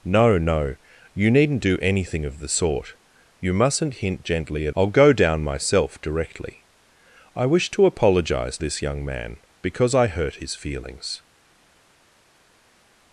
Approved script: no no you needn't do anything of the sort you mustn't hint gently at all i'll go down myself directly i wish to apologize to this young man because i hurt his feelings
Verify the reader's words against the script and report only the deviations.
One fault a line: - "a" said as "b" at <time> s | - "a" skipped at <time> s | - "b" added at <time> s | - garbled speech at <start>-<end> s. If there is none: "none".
- "all" skipped at 4.8 s
- "to" skipped at 8.6 s